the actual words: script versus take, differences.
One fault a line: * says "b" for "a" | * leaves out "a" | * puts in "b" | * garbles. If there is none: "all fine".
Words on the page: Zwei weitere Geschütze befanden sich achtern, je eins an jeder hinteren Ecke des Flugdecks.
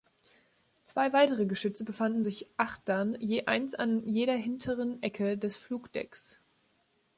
all fine